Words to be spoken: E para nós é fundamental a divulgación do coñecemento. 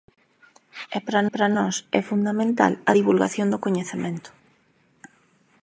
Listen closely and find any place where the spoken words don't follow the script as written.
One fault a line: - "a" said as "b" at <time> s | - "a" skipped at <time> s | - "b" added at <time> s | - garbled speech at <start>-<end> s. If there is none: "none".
- "para" added at 1.3 s